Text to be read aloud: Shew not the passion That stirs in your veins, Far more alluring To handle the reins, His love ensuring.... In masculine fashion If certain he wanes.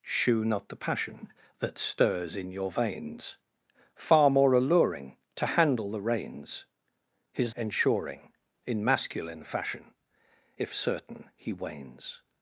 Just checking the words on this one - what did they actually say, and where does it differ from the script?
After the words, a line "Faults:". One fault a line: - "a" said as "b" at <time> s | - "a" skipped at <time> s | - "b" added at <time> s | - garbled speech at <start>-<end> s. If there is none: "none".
Shew not the passion That stirs in your veins, Far more alluring To handle the reins, His ensuring.... In masculine fashion If certain he wanes.
Faults:
- "love" skipped at 7.5 s